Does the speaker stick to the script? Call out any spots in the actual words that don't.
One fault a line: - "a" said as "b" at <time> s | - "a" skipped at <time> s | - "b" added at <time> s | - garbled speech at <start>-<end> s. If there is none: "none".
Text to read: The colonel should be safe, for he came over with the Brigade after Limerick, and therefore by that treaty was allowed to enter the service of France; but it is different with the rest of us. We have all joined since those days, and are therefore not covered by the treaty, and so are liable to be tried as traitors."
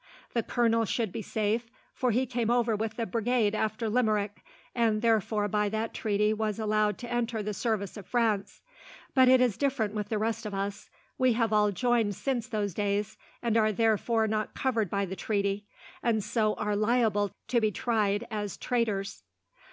none